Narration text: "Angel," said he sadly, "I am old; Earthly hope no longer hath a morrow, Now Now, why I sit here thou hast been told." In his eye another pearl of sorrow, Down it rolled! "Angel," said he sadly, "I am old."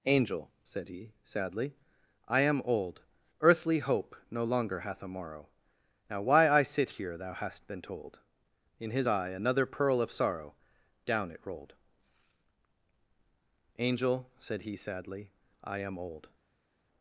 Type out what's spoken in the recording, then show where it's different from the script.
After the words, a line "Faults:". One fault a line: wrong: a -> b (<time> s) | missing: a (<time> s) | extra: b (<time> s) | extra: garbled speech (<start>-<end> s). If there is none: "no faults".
"Angel," said he sadly, "I am old; Earthly hope no longer hath a morrow, Now, why I sit here thou hast been told." In his eye another pearl of sorrow, Down it rolled! "Angel," said he sadly, "I am old."
Faults:
missing: Now (6.2 s)